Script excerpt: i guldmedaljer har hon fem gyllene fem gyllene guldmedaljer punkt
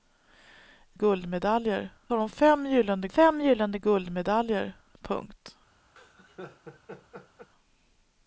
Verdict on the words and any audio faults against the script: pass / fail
fail